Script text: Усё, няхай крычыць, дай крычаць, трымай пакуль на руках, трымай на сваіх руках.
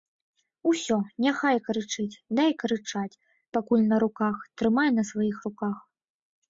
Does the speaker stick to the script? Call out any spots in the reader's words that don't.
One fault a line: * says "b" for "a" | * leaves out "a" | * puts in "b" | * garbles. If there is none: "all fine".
* leaves out "трымай"